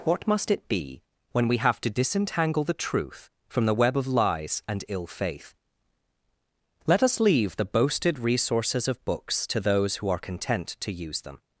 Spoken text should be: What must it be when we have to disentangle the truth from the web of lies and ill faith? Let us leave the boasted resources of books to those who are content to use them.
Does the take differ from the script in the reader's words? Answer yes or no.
no